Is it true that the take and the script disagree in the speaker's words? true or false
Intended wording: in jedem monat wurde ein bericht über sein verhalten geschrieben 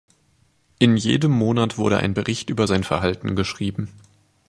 false